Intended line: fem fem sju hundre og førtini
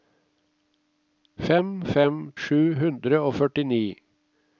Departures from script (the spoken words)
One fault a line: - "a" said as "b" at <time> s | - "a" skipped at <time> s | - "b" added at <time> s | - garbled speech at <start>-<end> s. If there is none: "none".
none